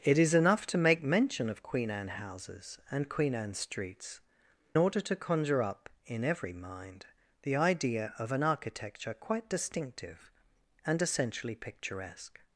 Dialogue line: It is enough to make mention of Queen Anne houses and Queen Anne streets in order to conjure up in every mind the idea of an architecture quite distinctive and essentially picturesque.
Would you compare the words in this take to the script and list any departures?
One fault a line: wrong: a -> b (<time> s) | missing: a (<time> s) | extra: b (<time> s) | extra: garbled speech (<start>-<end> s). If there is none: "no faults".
missing: in (4.2 s)